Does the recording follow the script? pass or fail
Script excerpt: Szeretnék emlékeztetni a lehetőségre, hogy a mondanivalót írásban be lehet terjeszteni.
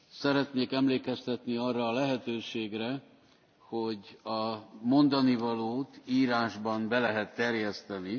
fail